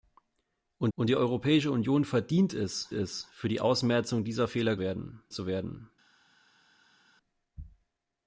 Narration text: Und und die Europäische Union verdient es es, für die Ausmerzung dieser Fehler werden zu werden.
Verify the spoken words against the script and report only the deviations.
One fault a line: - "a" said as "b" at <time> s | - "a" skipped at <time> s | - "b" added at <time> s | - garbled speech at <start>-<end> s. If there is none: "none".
none